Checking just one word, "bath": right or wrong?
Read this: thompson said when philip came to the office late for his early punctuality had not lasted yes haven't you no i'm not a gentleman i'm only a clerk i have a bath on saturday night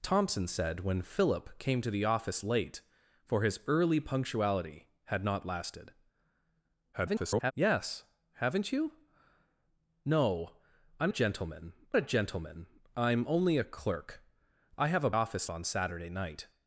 wrong